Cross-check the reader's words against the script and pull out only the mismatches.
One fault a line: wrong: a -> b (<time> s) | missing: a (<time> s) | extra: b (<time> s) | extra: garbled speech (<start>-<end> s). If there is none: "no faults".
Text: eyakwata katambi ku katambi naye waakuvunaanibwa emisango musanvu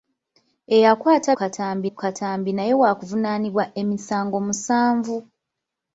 no faults